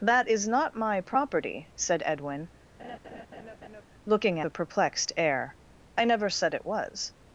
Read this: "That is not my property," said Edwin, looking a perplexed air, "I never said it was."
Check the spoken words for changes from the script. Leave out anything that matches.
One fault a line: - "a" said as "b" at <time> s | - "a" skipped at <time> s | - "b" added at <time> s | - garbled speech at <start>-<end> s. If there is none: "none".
none